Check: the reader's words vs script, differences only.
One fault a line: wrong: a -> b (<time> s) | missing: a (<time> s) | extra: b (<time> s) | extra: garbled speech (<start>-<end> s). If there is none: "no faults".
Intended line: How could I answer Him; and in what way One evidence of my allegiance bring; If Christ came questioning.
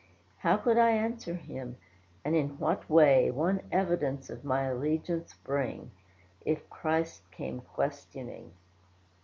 no faults